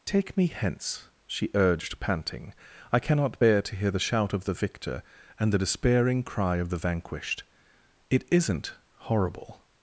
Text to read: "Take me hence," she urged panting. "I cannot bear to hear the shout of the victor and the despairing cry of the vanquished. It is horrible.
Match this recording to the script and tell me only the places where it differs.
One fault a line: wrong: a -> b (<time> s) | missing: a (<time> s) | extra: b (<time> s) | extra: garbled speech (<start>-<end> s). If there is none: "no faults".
wrong: is -> isn't (8.3 s)